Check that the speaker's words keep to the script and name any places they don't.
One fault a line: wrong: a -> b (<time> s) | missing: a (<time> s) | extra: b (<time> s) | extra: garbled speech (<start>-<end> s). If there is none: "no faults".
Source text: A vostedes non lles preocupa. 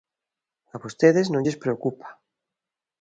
no faults